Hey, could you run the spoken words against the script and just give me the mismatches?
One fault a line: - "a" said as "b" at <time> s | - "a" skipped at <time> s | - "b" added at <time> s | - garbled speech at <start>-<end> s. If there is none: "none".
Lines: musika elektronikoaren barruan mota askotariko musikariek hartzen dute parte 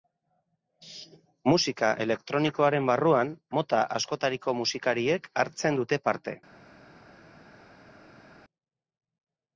none